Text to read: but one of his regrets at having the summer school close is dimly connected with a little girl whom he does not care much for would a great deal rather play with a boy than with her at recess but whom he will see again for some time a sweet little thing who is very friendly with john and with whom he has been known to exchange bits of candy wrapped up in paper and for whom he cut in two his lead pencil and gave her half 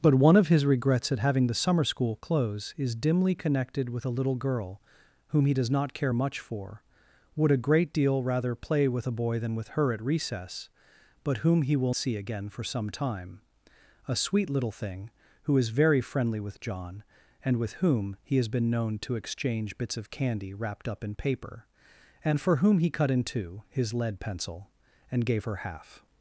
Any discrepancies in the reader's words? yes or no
no